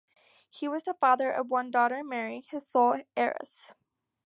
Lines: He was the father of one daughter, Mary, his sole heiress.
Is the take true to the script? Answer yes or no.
yes